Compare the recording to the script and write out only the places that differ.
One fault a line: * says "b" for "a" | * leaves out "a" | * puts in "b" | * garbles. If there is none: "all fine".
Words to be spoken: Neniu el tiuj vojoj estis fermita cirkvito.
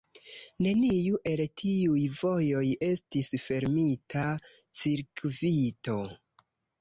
all fine